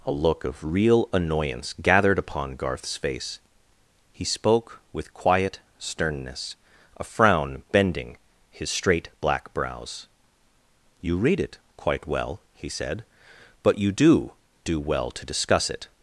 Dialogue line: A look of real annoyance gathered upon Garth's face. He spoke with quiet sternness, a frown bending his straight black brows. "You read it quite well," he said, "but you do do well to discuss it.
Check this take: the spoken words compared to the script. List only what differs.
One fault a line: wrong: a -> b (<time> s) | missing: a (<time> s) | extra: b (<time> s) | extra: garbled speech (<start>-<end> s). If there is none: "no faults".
no faults